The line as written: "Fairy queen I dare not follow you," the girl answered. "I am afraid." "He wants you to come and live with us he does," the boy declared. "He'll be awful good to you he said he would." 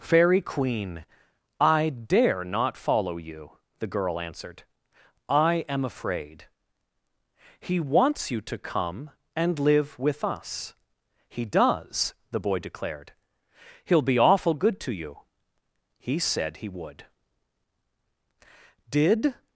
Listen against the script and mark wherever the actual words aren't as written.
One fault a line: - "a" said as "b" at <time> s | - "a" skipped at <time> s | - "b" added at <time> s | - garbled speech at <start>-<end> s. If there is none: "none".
- "Did" added at 18.9 s